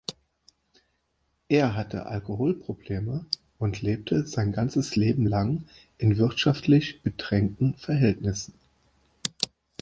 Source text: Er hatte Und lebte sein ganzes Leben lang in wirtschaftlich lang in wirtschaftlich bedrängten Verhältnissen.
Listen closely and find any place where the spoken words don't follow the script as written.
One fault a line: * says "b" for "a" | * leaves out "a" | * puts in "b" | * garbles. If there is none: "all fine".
* puts in "Alkoholprobleme"
* leaves out "lang in wirtschaftlich"